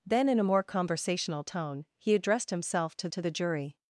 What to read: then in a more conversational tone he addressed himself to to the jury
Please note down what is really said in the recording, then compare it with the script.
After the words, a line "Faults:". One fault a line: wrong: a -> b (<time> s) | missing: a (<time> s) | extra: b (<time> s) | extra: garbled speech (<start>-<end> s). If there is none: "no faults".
then in a more conversational tone he addressed himself to to the jury
Faults:
no faults